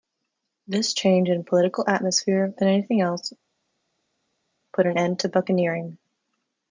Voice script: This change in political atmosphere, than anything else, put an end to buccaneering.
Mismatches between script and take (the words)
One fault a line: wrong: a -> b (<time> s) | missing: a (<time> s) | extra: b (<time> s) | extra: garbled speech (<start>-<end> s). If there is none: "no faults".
no faults